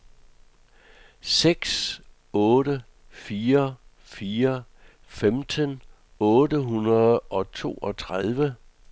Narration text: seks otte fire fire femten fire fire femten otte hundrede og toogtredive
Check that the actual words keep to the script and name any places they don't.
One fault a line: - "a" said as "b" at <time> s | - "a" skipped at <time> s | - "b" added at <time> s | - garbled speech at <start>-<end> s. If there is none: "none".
- "fire fire femten" skipped at 5.8 s